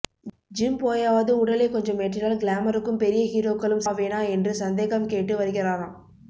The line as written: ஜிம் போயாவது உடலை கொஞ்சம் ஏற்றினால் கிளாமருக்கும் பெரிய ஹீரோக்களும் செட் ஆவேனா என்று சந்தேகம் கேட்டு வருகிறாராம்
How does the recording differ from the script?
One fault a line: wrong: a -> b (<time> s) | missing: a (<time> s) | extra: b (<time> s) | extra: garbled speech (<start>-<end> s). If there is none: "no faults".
missing: செட் (3.9 s)